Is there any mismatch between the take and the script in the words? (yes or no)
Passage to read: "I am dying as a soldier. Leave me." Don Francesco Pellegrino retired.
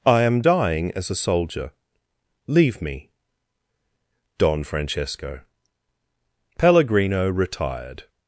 no